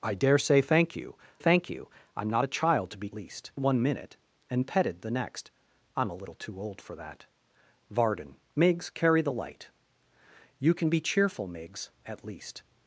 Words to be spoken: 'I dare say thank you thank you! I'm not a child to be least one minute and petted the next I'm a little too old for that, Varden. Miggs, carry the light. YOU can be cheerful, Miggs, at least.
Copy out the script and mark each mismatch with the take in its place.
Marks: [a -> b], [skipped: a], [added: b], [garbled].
'I dare say thank you thank you! I'm not a child to be least one minute and petted the next I'm a little too old for that, Varden. Miggs, carry the light. YOU can be cheerful, Miggs, at least.